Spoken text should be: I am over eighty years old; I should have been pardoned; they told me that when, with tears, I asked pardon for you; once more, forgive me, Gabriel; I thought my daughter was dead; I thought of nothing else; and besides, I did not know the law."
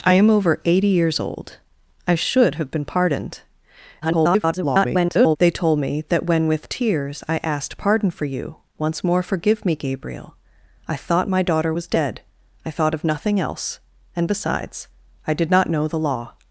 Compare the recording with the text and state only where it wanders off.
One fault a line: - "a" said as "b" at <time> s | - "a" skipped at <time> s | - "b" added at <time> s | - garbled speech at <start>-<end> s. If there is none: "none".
- garbled speech at 4.0-5.4 s